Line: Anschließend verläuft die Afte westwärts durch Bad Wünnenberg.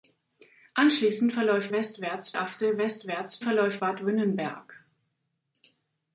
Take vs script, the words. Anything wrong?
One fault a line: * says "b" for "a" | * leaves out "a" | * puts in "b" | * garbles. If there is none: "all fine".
* says "westwärts" for "die"
* says "verläuft" for "durch"